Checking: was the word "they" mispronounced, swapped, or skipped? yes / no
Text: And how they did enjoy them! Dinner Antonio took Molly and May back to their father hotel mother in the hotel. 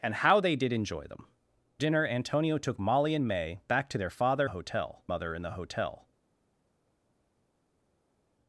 no